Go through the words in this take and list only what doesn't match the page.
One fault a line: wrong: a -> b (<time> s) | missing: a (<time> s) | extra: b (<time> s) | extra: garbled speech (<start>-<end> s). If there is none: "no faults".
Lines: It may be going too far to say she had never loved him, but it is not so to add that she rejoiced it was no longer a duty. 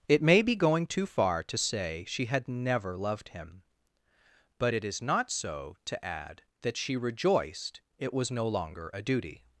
no faults